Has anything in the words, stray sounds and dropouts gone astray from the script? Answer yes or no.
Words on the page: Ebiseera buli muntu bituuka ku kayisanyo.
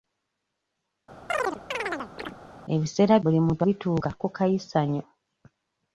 yes